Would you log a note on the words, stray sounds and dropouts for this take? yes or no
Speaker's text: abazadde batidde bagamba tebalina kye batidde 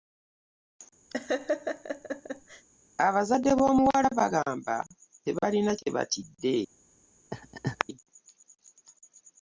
yes